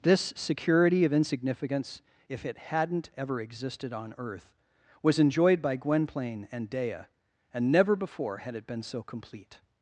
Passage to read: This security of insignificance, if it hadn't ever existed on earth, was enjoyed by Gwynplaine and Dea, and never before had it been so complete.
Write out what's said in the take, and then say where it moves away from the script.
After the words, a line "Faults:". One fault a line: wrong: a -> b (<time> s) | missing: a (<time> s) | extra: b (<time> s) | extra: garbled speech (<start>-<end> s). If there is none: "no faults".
This security of insignificance, if it hadn't ever existed on earth, was enjoyed by Gwynplaine and Dea, and never before had it been so complete.
Faults:
no faults